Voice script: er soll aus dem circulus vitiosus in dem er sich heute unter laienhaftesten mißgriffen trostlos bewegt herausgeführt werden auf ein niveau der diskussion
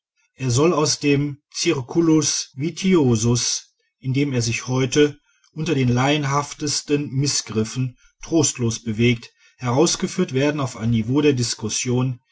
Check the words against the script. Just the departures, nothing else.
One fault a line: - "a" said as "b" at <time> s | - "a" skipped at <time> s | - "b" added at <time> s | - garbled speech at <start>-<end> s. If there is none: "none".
- "den" added at 5.8 s